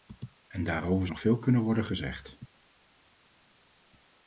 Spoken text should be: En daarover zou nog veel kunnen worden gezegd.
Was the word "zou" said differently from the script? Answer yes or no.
yes